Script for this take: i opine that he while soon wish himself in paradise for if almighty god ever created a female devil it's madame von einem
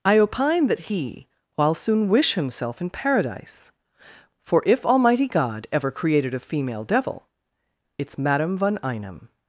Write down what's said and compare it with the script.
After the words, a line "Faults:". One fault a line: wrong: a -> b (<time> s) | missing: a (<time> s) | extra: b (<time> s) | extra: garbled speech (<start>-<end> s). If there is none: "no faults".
i opine that he while soon wish himself in paradise for if almighty god ever created a female devil it's madame von einem
Faults:
no faults